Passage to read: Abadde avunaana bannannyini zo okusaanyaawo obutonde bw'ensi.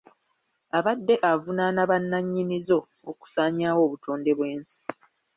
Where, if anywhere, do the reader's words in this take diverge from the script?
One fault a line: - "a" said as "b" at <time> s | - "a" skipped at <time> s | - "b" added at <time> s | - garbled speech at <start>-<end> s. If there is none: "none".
none